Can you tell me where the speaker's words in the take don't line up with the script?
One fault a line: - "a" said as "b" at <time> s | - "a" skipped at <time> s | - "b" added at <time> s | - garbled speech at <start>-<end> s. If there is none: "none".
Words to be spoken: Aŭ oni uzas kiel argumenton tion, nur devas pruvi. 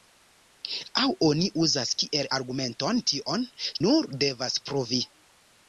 none